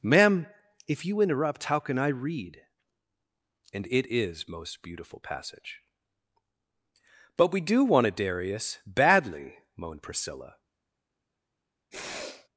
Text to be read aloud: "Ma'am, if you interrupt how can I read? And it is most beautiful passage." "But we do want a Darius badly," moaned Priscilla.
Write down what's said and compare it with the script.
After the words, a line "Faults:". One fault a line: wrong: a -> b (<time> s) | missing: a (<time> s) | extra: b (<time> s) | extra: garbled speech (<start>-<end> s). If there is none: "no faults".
"Ma'am, if you interrupt how can I read? And it is most beautiful passage." "But we do want a Darius badly," moaned Priscilla.
Faults:
no faults